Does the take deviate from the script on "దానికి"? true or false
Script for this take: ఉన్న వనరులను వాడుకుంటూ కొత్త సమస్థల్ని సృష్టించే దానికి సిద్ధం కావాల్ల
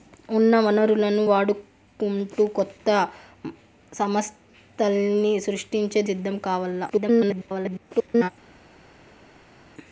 true